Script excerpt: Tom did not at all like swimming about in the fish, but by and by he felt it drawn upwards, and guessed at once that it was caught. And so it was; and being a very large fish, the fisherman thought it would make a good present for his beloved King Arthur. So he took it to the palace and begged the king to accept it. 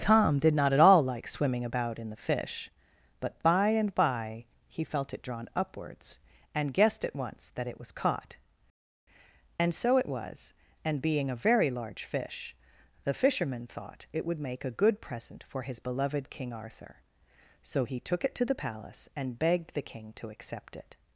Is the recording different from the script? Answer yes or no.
no